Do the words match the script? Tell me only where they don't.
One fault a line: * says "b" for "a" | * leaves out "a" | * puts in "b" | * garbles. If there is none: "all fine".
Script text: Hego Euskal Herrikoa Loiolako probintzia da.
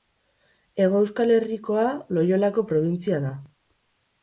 all fine